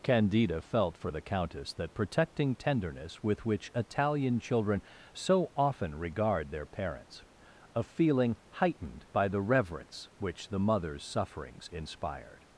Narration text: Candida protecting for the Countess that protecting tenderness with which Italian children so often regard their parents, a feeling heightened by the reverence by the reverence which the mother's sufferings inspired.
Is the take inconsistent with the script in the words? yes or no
yes